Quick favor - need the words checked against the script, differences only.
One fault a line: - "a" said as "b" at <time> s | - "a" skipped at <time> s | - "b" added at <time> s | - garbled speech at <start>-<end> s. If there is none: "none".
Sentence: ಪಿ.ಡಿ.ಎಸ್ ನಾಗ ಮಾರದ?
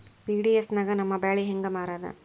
- "ನಮ್ಮ ಬ್ಯಾಳಿ ಹೆಂಗ" added at 0.9 s